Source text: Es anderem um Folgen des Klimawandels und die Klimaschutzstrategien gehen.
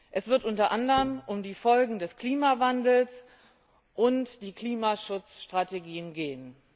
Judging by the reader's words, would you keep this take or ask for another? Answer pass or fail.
fail